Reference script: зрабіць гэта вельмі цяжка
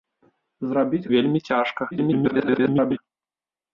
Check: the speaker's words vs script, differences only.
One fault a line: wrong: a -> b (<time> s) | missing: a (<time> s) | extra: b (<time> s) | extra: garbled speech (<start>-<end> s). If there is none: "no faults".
missing: гэта (1.0 s)
extra: garbled speech (1.9-3.0 s)